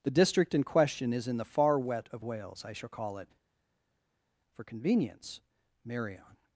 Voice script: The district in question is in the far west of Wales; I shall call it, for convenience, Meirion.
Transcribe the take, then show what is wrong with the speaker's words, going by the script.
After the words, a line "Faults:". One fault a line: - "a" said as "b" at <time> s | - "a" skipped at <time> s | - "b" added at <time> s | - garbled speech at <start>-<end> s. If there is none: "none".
The district in question is in the far wet of Wales; I shall call it, for convenience, Meirion.
Faults:
- "west" said as "wet" at 1.8 s